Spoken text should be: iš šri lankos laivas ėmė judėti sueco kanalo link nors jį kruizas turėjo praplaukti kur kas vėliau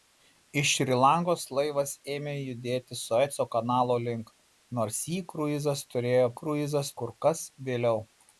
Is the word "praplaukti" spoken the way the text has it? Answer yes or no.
no